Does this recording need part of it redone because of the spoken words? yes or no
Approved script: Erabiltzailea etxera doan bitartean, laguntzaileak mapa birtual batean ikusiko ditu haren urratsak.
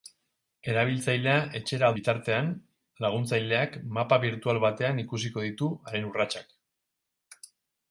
yes